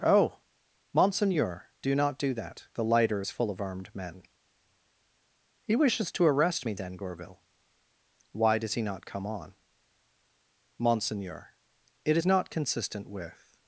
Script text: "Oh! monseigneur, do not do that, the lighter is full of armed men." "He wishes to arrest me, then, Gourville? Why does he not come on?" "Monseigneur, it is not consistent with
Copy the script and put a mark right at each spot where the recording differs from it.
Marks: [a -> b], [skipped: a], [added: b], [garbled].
"Oh! monseigneur, do not do that, the lighter is full of armed men." "He wishes to arrest me, then, Gourville? Why does he not come on?" "Monseigneur, it is not consistent with